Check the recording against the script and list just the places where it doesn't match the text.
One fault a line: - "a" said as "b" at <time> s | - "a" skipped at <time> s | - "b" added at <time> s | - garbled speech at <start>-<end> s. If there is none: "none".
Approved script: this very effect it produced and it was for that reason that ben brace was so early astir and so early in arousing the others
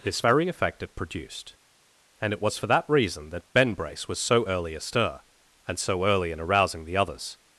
none